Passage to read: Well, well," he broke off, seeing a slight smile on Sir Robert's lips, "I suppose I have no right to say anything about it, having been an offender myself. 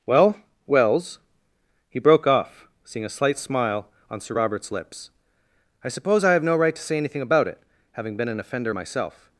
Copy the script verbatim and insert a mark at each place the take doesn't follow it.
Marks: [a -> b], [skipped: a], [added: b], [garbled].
Well, [well," -> wells] he broke off, seeing a slight smile on Sir Robert's lips, "I suppose I have no right to say anything about it, having been an offender myself.